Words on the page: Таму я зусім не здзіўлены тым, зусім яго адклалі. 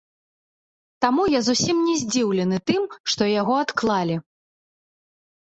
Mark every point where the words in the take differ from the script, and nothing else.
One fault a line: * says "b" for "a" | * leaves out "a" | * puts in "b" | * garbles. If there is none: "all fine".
* says "што" for "зусім"